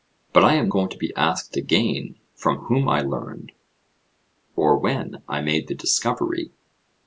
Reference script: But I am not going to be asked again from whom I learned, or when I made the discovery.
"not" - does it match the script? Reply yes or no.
no